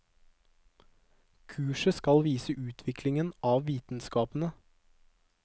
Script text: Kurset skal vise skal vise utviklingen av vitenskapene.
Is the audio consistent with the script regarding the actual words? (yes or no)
no